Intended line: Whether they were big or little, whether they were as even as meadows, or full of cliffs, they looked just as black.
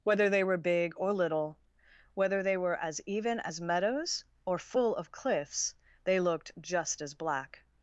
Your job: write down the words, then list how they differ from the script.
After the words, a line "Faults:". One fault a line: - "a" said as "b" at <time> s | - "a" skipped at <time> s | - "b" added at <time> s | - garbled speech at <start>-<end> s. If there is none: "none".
Whether they were big or little, whether they were as even as meadows, or full of cliffs, they looked just as black.
Faults:
none